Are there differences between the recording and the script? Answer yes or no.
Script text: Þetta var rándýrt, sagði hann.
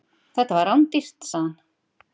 no